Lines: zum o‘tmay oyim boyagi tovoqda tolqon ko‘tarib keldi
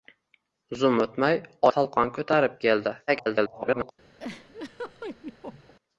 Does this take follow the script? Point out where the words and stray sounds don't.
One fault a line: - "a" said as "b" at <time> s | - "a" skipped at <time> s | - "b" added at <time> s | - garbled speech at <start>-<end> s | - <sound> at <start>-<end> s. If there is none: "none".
- "oyim boyagi tovoqda" skipped at 1.4 s
- garbled speech at 3.1-3.9 s
- laugh at 4.2-5.7 s